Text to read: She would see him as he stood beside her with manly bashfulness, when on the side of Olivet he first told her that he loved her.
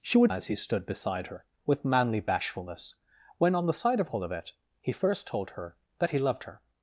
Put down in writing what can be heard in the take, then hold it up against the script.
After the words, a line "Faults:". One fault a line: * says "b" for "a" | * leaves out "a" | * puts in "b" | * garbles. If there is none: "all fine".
She would as he stood beside her with manly bashfulness, when on the side of Olivet he first told her that he loved her.
Faults:
* leaves out "see him"